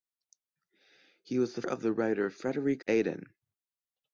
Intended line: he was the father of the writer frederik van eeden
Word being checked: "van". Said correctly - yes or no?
no